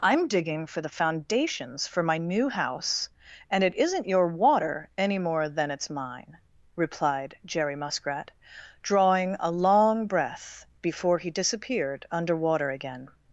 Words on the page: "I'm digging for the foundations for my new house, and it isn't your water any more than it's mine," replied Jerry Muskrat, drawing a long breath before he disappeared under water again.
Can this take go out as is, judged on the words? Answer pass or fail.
pass